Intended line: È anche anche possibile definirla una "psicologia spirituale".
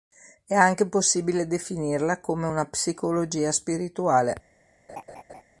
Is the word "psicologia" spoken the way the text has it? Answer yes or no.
yes